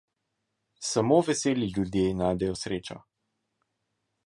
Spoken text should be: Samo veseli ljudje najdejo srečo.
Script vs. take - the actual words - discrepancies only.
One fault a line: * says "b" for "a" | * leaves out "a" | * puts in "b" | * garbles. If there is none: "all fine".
all fine